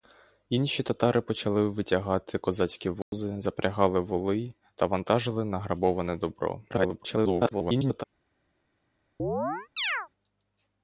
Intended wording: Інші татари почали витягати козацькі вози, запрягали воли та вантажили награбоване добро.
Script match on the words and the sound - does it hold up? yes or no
no